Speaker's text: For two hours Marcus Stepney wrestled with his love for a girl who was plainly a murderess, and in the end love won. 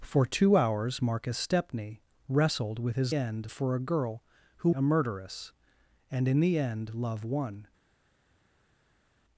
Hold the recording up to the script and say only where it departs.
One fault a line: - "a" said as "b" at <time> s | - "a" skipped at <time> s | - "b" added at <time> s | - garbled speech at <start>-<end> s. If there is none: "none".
- "love" said as "end" at 3.1 s
- "was plainly" skipped at 4.7 s